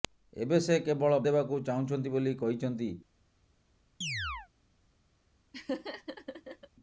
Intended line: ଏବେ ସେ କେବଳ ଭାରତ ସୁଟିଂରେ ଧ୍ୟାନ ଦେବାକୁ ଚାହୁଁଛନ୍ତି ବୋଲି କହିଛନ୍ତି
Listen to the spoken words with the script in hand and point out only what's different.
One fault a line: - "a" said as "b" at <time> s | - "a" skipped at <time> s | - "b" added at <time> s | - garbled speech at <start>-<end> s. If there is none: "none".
- "ଭାରତ ସୁଟିଂରେ ଧ୍ୟାନ" skipped at 1.2 s